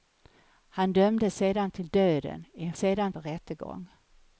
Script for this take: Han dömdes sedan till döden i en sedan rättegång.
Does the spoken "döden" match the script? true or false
true